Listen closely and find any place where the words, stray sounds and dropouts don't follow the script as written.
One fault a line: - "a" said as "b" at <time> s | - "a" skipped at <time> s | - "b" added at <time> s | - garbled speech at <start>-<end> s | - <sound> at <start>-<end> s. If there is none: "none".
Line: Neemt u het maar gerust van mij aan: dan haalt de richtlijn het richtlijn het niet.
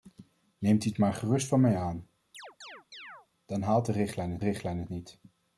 - chirp at 2.3-3.3 s